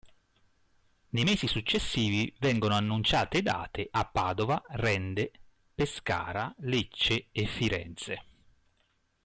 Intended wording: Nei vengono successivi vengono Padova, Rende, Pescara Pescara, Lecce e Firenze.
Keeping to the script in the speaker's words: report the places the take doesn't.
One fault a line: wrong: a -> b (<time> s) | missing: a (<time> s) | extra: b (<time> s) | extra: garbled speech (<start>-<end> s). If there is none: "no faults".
wrong: vengono -> mesi (1.2 s)
extra: annunciate date a (2.7 s)
missing: Pescara (6.5 s)